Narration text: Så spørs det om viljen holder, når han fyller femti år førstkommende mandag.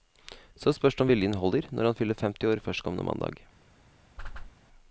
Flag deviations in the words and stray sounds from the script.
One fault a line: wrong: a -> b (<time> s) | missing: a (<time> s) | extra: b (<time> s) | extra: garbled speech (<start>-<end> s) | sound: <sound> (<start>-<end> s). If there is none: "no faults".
sound: whoosh (4.2-4.5 s)